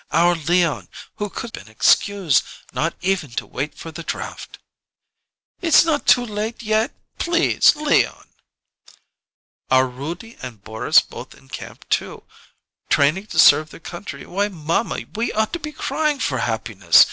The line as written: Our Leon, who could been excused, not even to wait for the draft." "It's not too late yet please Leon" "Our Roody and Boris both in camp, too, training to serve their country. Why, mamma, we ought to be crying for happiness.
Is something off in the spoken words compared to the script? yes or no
no